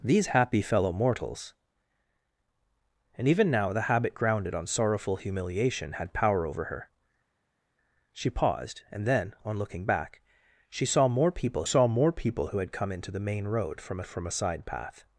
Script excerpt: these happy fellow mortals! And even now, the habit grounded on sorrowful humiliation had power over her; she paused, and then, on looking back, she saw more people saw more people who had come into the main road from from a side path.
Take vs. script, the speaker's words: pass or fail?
pass